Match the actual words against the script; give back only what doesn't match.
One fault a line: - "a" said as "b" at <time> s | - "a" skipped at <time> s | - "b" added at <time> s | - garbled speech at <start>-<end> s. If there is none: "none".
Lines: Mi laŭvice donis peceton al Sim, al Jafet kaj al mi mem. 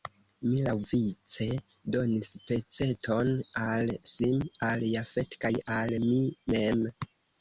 none